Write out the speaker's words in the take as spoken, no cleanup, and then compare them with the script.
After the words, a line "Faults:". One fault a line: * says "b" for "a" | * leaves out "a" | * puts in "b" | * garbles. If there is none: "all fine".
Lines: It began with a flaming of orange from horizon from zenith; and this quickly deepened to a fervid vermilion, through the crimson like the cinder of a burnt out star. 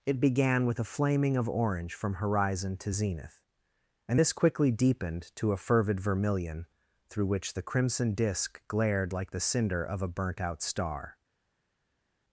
It began with a flaming of orange from horizon to zenith; and this quickly deepened to a fervid vermilion, through which the crimson disk glared like the cinder of a burnt out star.
Faults:
* says "to" for "from"
* puts in "which"
* puts in "disk glared"